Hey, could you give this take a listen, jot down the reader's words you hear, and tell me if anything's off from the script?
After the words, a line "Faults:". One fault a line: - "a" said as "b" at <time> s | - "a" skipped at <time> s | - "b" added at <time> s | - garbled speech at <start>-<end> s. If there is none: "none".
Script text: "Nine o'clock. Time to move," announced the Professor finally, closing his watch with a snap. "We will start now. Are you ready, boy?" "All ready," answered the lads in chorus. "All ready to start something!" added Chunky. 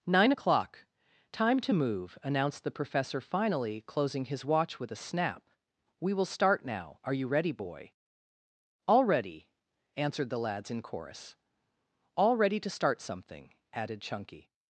"Nine o'clock. Time to move," announced the Professor finally, closing his watch with a snap. "We will start now. Are you ready, boy?" "All ready," answered the lads in chorus. "All ready to start something!" added Chunky.
Faults:
none